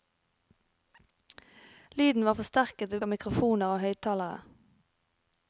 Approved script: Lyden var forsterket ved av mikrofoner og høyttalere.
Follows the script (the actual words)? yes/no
yes